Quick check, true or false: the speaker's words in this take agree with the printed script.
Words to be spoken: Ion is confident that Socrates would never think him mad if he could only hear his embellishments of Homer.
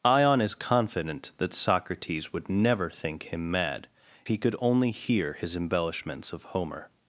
false